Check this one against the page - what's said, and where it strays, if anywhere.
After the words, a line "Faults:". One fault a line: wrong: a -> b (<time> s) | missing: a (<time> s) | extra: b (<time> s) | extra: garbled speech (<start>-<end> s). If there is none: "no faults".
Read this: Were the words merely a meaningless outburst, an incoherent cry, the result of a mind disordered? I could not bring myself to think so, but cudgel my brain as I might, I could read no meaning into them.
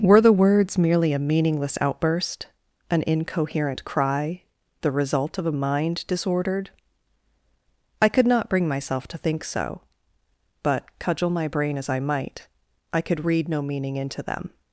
Were the words merely a meaningless outburst, an incoherent cry, the result of a mind disordered? I could not bring myself to think so, but cudgel my brain as I might, I could read no meaning into them.
Faults:
no faults